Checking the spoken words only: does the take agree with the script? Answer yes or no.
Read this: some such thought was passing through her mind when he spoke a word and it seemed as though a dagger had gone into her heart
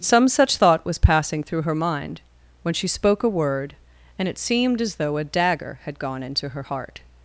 no